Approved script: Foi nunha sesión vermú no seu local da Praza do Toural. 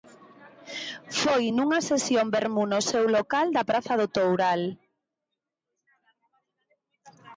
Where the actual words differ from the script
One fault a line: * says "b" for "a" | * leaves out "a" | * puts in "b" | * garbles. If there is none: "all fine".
all fine